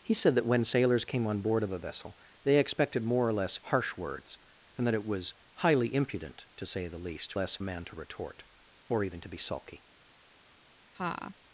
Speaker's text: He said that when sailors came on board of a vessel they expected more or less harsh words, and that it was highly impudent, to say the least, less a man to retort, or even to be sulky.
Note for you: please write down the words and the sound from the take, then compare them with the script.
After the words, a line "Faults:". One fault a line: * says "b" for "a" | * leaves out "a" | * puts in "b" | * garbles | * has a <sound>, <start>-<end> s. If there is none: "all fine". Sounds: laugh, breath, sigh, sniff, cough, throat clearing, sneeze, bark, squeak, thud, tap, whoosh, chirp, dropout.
He said that when sailors came on board of a vessel they expected more or less harsh words, and that it was highly impudent, to say the least, less a man to retort, or even to be sulky.
Faults:
* has a laugh, 10.9-11.3 s